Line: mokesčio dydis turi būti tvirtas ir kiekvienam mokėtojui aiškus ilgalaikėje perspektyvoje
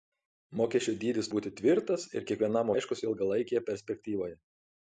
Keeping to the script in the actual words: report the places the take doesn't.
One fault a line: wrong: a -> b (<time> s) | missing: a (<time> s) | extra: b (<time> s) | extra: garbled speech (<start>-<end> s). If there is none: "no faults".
missing: turi (1.3 s)
missing: mokėtojui (2.7 s)